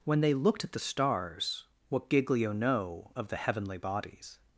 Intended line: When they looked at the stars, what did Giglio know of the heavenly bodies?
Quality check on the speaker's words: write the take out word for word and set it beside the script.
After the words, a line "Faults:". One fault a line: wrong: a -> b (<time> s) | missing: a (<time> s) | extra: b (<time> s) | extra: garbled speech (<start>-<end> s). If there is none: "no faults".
When they looked at the stars, what Giglio know of the heavenly bodies?
Faults:
missing: did (2.1 s)